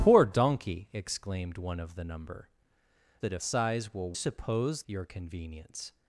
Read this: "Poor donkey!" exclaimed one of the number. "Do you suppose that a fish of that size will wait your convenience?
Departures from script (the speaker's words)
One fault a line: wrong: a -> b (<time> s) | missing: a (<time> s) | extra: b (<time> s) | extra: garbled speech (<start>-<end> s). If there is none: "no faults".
missing: Do you suppose (2.5 s)
missing: fish of that (3.4 s)
wrong: wait -> suppose (4.1 s)